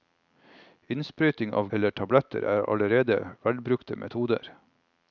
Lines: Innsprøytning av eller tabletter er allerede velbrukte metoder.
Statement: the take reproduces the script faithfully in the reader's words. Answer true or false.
true